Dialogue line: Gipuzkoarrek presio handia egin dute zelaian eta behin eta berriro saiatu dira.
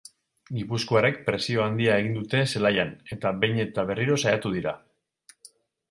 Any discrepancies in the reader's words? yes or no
no